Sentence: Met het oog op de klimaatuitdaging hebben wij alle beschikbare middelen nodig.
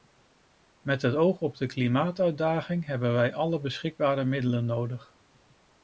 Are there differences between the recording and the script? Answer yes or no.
no